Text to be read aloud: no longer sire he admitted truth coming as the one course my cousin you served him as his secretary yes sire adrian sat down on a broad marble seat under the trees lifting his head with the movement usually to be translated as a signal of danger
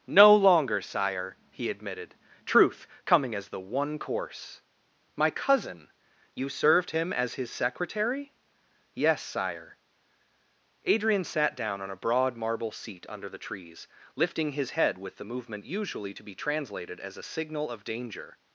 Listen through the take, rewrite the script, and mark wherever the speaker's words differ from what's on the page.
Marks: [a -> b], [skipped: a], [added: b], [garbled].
no longer sire he admitted truth coming as the one course my cousin you served him as his secretary yes sire adrian sat down on a broad marble seat under the trees lifting his head with the movement usually to be translated as a signal of danger